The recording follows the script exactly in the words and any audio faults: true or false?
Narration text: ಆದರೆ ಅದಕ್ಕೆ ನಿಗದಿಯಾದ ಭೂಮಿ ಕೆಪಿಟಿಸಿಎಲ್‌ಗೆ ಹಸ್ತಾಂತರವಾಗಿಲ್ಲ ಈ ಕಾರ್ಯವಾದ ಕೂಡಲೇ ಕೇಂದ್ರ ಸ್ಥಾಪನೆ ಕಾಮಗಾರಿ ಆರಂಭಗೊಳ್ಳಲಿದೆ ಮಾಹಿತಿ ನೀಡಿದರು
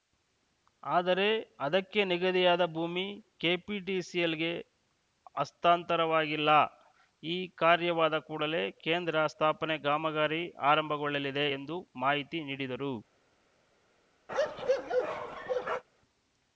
false